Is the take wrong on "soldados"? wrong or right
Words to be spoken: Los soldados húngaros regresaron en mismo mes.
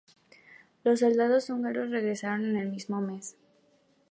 right